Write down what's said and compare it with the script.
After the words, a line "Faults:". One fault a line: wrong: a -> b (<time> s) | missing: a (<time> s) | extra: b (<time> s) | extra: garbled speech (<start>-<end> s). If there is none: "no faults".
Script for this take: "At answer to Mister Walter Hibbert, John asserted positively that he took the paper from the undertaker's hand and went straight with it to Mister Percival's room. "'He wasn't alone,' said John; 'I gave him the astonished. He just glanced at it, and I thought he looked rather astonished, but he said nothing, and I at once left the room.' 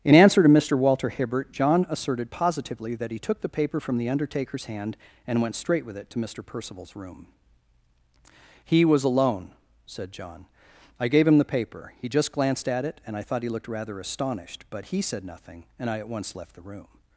"In answer to Mister Walter Hibbert, John asserted positively that he took the paper from the undertaker's hand and went straight with it to Mister Percival's room. "'He was alone,' said John; 'I gave him the paper. He just glanced at it, and I thought he looked rather astonished, but he said nothing, and I at once left the room.'
Faults:
wrong: At -> In (0.0 s)
wrong: wasn't -> was (8.9 s)
wrong: astonished -> paper (11.5 s)